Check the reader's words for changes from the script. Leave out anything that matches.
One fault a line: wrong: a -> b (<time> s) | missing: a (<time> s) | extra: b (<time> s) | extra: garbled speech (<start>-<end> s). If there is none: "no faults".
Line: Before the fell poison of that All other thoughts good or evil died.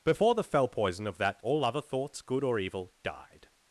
no faults